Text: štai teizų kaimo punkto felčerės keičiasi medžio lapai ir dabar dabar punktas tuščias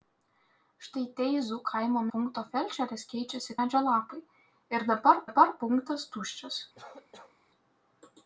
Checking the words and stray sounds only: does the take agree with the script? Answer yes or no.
no